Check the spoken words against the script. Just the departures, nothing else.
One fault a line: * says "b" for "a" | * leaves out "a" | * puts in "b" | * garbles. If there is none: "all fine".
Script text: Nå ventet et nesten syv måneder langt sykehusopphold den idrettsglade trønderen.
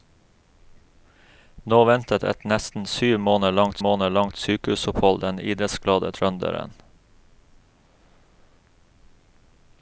* puts in "måneder langt"